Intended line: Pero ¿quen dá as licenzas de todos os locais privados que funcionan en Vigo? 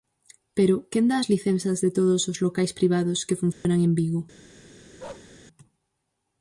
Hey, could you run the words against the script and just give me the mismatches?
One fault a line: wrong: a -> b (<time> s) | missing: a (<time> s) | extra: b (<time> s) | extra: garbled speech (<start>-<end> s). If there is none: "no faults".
no faults